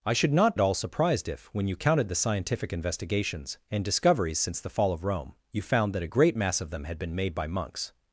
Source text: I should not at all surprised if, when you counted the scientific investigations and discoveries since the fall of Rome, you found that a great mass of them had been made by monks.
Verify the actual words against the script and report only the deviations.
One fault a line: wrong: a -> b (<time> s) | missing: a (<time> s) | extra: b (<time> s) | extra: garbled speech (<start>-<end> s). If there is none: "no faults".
no faults